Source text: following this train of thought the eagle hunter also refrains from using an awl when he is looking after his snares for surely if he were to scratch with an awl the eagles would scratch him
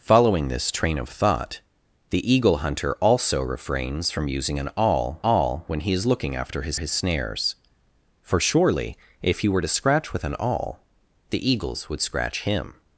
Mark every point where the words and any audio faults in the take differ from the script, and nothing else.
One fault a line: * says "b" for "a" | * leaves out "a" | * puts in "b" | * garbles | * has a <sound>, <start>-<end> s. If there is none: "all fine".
* puts in "awl"
* puts in "his"